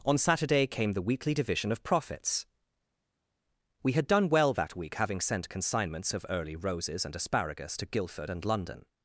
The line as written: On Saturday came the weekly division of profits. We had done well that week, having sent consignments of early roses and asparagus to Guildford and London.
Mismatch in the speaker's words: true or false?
false